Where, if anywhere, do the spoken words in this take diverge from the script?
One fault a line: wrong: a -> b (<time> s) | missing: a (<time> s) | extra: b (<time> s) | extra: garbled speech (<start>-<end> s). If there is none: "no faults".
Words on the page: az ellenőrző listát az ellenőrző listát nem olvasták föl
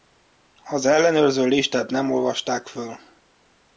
missing: az ellenőrző listát (1.9 s)